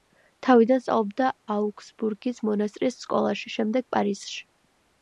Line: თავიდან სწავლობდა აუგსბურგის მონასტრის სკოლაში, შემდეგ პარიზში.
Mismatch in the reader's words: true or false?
false